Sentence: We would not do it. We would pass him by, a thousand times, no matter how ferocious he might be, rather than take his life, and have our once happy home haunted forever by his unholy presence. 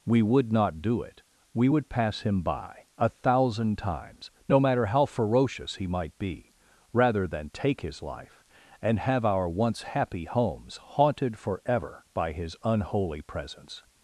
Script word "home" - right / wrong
wrong